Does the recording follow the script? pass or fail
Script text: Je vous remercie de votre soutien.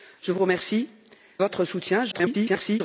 fail